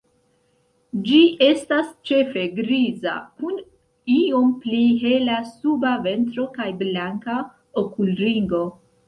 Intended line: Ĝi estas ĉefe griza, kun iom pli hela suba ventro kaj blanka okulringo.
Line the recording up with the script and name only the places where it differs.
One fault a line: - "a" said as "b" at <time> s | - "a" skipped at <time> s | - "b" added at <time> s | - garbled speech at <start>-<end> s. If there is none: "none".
none